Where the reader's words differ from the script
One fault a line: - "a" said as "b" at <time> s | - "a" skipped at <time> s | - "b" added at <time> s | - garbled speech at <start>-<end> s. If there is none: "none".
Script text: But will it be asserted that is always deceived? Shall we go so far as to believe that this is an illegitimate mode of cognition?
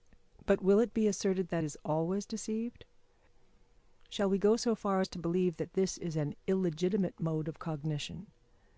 none